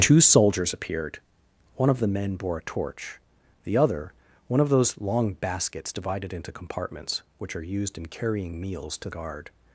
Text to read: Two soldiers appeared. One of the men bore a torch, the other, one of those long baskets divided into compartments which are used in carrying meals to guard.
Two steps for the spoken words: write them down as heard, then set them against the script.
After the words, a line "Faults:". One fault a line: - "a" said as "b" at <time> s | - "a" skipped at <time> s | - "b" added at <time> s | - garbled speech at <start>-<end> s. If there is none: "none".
Two soldiers appeared. One of the men bore a torch, the other, one of those long baskets divided into compartments which are used in carrying meals to guard.
Faults:
none